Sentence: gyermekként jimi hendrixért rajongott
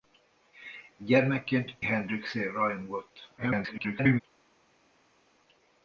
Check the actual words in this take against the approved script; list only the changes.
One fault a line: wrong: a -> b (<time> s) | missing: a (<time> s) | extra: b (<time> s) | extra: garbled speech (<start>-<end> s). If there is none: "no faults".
missing: jimi (1.8 s)
extra: garbled speech (3.4-4.2 s)